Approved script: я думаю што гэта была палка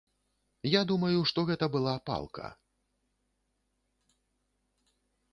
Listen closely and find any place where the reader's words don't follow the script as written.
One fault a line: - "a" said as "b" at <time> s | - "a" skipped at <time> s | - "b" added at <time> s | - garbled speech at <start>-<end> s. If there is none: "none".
none